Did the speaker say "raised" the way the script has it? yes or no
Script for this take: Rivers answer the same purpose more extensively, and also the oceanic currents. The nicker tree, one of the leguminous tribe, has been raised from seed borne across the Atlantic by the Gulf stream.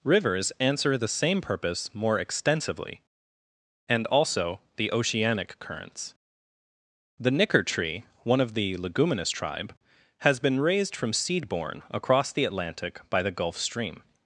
yes